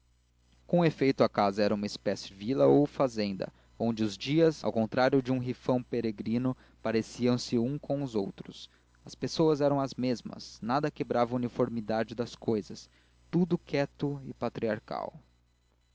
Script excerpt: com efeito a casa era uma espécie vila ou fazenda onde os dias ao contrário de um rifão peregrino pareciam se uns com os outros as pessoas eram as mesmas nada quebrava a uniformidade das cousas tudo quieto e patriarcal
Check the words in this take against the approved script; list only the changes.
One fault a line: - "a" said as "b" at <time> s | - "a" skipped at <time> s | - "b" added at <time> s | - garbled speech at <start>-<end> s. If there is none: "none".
none